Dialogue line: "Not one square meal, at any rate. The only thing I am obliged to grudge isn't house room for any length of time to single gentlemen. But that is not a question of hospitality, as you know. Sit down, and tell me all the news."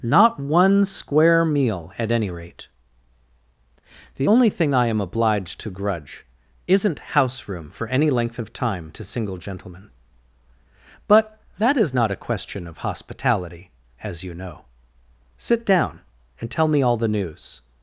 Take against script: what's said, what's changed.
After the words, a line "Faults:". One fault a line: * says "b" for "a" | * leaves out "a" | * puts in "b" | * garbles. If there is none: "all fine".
"Not one square meal, at any rate. The only thing I am obliged to grudge isn't house room for any length of time to single gentlemen. But that is not a question of hospitality, as you know. Sit down, and tell me all the news."
Faults:
all fine